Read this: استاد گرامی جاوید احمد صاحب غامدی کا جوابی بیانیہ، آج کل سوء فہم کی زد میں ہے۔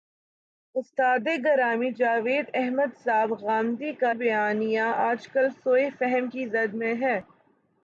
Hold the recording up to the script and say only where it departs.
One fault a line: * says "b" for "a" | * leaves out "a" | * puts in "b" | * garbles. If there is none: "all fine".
* leaves out "جوابی"